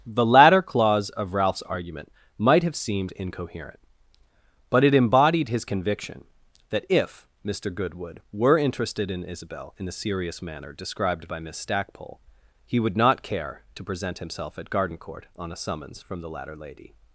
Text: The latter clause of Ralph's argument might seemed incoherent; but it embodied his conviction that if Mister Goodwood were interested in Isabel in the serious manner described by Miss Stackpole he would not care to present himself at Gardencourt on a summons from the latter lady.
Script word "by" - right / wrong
right